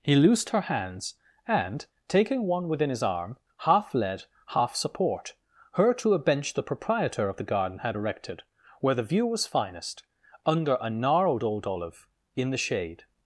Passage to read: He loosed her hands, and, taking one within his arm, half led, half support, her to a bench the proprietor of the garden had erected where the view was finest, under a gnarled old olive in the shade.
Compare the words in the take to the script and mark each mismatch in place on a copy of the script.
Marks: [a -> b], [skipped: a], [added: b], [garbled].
He loosed her hands, and, taking one within his arm, half led, half support, her to a bench the proprietor of the garden had erected where the view was finest, under a gnarled old olive in the shade.